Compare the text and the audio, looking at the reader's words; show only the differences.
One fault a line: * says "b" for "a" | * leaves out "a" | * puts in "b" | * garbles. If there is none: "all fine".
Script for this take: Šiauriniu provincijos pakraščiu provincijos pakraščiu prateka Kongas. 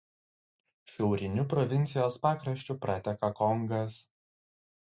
* leaves out "provincijos pakraščiu"